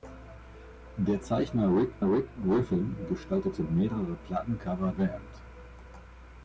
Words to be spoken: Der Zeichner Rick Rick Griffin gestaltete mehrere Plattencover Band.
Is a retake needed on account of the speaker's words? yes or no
no